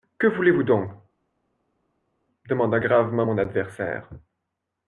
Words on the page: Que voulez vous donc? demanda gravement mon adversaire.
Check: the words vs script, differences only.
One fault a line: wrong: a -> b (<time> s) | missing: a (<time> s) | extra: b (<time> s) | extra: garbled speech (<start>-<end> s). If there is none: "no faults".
no faults